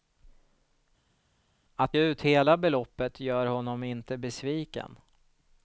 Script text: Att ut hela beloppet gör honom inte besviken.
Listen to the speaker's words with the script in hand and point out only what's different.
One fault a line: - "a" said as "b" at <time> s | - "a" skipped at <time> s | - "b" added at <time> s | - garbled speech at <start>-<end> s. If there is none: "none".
none